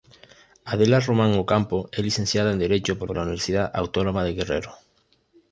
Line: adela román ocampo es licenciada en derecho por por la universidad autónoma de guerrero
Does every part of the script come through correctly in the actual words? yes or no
yes